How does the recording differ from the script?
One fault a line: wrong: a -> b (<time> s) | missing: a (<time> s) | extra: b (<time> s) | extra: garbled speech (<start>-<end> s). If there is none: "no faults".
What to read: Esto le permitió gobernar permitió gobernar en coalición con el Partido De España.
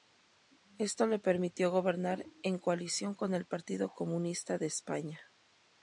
missing: permitió gobernar (2.2 s)
extra: Comunista (3.9 s)